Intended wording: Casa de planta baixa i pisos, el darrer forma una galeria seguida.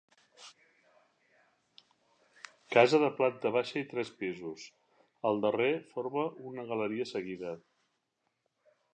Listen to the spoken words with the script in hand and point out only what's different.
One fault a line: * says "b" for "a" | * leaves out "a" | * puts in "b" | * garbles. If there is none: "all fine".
* puts in "tres"